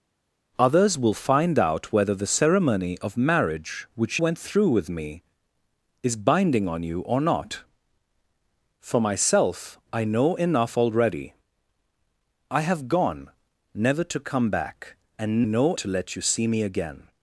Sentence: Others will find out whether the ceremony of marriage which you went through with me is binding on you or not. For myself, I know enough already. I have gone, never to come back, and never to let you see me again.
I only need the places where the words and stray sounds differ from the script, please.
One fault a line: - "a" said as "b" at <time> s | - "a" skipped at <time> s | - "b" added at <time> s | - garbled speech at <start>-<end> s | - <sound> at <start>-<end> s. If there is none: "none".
- "you" skipped at 4.2 s
- "never" said as "know" at 15.4 s